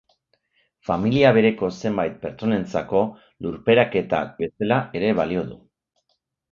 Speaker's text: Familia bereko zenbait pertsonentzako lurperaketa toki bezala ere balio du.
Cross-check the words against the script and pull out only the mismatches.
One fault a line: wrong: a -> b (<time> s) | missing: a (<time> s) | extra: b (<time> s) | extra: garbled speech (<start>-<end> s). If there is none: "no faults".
missing: toki (4.2 s)